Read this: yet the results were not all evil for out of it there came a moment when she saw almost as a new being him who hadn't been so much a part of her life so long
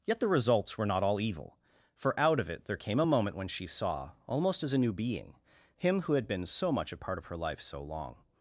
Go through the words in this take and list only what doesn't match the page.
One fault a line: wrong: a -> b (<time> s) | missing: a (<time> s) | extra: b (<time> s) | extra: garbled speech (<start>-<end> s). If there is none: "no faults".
wrong: hadn't -> had (6.1 s)